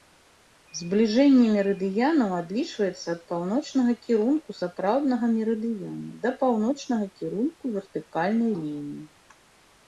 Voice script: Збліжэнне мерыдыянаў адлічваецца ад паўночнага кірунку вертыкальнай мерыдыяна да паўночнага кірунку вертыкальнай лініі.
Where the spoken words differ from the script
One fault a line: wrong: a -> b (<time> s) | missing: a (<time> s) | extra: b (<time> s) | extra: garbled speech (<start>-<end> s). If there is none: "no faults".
wrong: вертыкальнай -> сапраўднага (4.6 s)